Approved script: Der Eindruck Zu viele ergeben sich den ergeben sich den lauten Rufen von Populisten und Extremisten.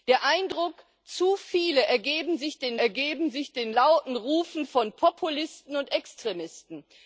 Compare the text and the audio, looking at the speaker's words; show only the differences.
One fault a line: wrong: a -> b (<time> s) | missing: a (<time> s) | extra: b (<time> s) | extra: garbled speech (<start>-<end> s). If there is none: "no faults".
no faults